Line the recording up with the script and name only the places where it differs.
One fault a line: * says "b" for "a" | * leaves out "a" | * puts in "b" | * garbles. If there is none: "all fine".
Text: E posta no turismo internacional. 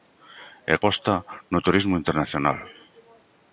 all fine